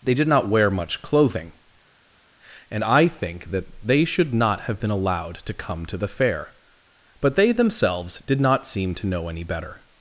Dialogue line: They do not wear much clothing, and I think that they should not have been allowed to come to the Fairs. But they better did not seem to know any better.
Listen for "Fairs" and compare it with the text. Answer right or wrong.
wrong